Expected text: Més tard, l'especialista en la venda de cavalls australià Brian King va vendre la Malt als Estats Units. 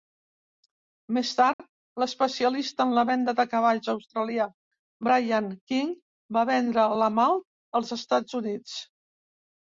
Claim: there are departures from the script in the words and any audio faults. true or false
true